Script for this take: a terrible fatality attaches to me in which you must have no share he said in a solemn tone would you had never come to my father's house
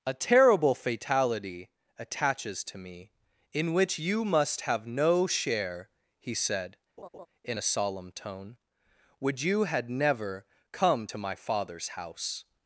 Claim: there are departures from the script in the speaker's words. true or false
false